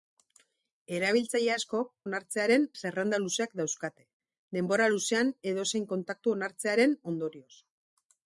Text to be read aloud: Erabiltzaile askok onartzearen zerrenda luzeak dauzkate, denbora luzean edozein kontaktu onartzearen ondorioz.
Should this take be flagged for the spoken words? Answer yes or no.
no